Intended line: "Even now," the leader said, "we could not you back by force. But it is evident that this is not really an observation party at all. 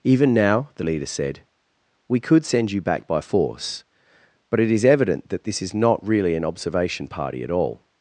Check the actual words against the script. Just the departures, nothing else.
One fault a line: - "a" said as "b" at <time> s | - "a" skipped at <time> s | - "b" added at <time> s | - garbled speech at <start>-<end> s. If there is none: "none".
- "not" said as "send" at 2.5 s